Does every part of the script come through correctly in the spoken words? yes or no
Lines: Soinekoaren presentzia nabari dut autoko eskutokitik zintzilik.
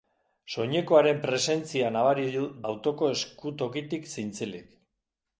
no